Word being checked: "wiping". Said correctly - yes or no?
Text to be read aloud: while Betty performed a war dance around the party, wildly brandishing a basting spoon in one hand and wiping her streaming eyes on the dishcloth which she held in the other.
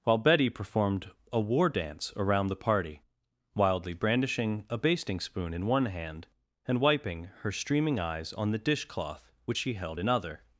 yes